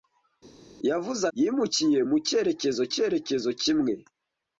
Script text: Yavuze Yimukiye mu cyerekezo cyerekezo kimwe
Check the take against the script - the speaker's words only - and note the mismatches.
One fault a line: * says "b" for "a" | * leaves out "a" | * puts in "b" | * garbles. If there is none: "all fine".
all fine